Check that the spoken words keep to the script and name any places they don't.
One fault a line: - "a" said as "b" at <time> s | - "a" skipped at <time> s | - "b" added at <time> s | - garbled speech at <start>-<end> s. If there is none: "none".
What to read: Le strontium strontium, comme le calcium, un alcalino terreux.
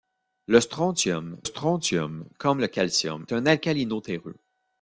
none